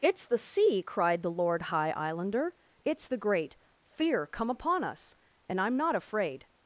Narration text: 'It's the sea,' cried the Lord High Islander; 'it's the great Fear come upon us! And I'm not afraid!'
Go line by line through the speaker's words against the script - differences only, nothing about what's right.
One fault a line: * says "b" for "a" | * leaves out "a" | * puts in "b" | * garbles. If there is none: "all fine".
all fine